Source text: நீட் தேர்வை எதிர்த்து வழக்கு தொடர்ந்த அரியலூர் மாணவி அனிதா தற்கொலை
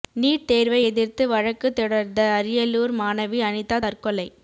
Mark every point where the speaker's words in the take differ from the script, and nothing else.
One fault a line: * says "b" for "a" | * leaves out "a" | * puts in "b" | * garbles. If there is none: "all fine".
all fine